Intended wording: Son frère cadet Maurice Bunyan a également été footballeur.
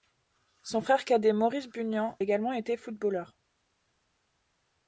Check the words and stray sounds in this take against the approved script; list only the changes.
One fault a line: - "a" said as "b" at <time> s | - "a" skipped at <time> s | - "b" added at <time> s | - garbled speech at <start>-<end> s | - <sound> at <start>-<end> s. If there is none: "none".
- "a" skipped at 2.2 s